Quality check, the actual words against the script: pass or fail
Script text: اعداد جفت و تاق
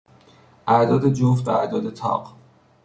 fail